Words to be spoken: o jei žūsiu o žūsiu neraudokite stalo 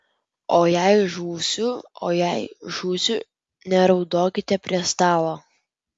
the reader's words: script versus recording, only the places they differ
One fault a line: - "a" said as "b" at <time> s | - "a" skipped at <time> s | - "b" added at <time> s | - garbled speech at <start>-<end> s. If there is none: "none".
- "jei" added at 2.2 s
- "prie" added at 4.7 s